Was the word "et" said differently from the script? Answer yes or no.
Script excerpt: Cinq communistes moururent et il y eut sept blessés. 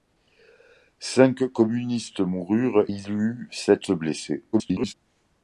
yes